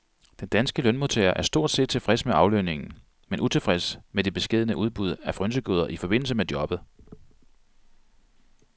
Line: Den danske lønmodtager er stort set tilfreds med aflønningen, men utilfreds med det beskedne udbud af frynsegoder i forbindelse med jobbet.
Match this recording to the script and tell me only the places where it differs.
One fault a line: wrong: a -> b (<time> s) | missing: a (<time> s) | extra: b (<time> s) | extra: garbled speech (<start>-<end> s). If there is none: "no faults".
no faults